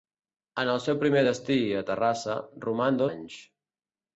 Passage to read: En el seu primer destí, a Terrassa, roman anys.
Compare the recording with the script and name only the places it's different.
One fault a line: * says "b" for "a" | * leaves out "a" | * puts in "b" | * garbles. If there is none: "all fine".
all fine